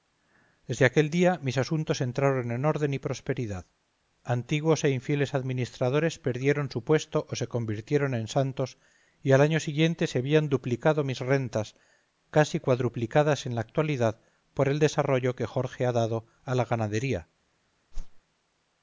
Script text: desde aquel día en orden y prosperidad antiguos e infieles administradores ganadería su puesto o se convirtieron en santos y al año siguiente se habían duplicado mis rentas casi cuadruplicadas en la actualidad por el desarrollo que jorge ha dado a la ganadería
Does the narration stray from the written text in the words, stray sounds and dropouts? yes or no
yes